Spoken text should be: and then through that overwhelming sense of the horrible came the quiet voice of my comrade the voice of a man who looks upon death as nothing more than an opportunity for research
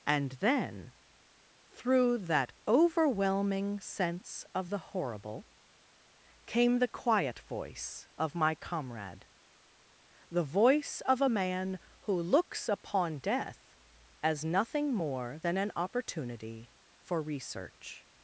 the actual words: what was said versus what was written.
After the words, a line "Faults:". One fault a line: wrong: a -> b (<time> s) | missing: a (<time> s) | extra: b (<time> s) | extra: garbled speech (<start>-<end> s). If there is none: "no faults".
and then through that overwhelming sense of the horrible came the quiet voice of my comrade the voice of a man who looks upon death as nothing more than an opportunity for research
Faults:
no faults